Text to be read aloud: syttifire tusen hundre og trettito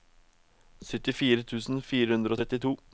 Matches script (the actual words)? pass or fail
fail